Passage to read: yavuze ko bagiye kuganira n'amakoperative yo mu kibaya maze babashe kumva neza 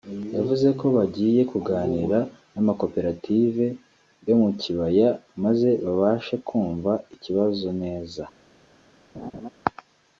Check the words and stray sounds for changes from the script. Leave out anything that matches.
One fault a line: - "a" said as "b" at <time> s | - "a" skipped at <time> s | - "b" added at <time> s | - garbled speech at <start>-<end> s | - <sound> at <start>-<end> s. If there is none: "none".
- "ikibazo" added at 7.1 s
- laugh at 9.1-9.5 s